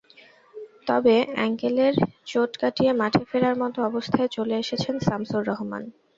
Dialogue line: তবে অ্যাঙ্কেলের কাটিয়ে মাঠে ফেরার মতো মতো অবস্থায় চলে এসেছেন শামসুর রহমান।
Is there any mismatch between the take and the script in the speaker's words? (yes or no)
yes